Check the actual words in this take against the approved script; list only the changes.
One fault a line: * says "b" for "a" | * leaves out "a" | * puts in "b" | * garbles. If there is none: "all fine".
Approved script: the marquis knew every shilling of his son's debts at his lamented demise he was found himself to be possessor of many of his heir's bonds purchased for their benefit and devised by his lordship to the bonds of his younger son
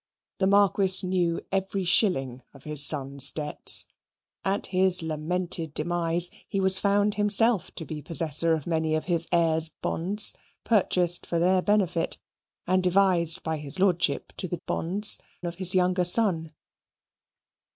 all fine